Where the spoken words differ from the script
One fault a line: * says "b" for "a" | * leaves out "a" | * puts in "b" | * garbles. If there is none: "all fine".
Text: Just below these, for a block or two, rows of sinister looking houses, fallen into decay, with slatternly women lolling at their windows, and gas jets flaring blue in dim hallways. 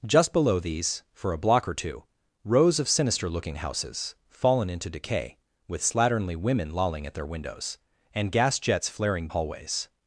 * leaves out "blue in dim"